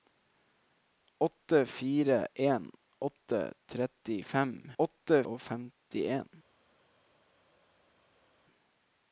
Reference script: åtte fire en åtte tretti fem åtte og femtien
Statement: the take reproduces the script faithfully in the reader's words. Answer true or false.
true